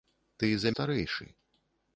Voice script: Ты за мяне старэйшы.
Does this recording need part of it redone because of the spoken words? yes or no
yes